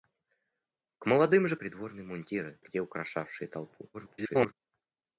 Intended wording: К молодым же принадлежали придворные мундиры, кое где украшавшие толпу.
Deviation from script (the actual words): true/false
true